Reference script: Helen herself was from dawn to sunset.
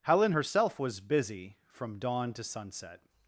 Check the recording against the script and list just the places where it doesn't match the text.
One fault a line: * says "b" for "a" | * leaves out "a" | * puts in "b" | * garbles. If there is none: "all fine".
* puts in "busy"